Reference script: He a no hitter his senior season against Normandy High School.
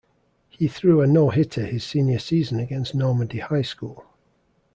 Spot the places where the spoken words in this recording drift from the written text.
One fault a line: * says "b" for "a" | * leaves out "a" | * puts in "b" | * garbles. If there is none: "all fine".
* puts in "threw"